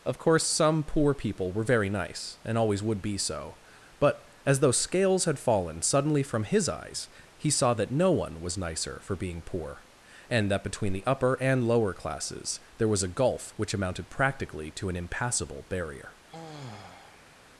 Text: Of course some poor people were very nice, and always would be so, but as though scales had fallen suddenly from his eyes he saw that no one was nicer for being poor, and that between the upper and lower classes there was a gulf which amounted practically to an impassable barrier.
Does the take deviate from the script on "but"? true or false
false